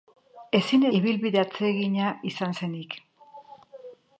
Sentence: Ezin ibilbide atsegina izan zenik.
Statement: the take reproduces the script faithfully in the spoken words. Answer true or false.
true